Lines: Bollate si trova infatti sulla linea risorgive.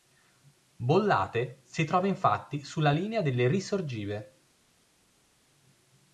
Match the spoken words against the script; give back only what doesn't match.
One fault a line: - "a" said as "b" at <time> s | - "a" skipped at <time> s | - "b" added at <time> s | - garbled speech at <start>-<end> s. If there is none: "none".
- "delle" added at 3.2 s